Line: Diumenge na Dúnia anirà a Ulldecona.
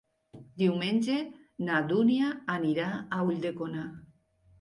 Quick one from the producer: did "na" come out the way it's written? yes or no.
yes